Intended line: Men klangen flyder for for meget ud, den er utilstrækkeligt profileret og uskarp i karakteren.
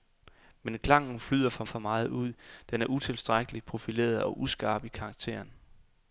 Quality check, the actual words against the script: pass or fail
pass